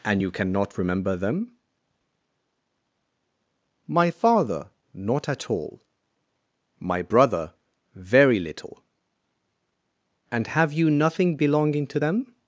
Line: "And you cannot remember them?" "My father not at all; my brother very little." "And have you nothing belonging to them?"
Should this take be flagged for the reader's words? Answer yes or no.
no